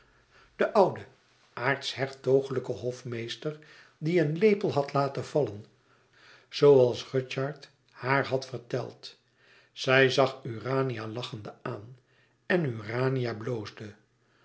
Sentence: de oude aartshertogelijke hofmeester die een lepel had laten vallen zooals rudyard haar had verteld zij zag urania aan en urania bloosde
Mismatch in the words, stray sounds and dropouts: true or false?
true